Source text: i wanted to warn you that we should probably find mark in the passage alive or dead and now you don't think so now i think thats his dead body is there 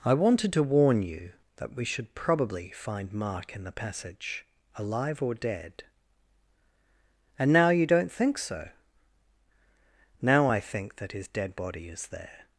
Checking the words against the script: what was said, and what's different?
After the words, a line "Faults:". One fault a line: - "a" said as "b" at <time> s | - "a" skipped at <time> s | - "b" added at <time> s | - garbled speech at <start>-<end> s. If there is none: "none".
i wanted to warn you that we should probably find mark in the passage alive or dead and now you don't think so now i think that his dead body is there
Faults:
- "thats" said as "that" at 11.0 s